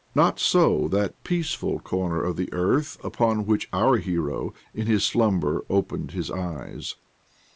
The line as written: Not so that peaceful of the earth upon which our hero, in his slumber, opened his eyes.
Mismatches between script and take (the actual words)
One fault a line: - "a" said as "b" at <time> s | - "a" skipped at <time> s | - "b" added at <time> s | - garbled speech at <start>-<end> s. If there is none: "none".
- "corner" added at 1.8 s